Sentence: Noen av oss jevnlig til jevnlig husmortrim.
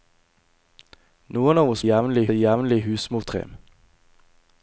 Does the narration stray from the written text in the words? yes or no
no